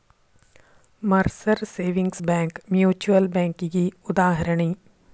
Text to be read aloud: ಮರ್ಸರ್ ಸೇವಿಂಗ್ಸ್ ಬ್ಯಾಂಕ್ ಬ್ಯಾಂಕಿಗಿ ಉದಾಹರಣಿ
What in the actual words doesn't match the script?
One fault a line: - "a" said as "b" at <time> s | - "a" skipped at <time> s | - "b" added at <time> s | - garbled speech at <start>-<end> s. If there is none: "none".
- "ಮ್ಯೂಚುಯಲ್" added at 2.7 s